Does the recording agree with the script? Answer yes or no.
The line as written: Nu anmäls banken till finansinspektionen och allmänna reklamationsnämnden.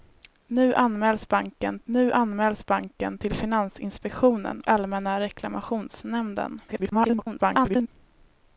no